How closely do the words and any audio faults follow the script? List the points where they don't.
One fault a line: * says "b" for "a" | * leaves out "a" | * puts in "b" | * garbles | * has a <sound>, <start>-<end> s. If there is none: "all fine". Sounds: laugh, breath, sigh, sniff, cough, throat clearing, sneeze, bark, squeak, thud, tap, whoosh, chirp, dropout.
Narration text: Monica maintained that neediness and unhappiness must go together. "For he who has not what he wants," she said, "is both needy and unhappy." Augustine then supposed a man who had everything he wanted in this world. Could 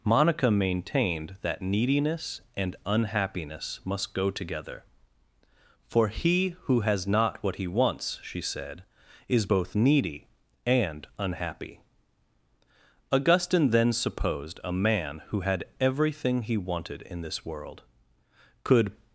all fine